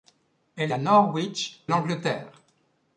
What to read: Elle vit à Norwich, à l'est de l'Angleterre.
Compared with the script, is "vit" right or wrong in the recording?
wrong